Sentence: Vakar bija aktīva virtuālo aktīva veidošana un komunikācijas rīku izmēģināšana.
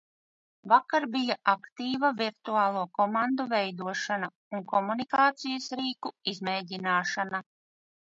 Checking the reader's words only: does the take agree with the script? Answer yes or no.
no